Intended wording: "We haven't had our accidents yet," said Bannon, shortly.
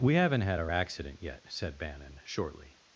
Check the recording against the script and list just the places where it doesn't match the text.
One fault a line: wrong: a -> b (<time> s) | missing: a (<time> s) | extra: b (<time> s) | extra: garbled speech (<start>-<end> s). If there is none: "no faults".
wrong: accidents -> accident (0.7 s)